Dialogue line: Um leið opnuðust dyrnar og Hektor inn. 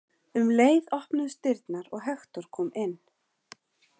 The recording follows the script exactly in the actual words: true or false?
false